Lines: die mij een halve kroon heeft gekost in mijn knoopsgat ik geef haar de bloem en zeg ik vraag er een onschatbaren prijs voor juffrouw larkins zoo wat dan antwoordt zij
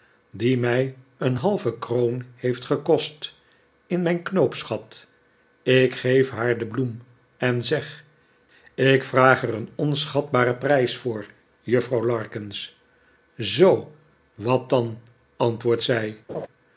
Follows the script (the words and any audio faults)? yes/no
no